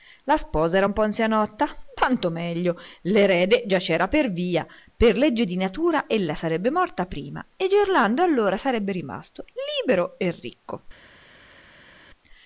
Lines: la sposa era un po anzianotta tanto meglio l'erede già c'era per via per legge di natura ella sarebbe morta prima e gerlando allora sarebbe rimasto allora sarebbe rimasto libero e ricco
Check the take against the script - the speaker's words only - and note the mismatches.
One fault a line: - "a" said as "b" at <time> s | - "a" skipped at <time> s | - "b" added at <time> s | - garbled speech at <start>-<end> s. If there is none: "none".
- "allora sarebbe rimasto" skipped at 9.4 s